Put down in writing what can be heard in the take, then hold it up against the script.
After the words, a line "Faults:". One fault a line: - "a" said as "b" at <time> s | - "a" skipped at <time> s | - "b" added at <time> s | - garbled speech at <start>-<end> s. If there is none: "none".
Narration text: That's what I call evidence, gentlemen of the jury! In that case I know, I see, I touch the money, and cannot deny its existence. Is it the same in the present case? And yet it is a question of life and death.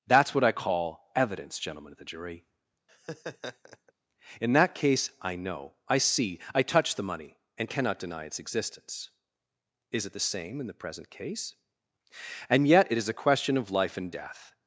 That's what I call evidence, gentlemen of the jury! In that case I know, I see, I touch the money, and cannot deny its existence. Is it the same in the present case? And yet it is a question of life and death.
Faults:
none